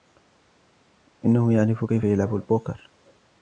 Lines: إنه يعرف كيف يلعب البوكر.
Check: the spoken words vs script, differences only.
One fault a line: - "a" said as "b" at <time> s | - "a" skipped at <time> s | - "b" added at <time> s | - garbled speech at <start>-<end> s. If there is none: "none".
none